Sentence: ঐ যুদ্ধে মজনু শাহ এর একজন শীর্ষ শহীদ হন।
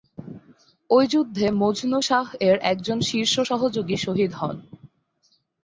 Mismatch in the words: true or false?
true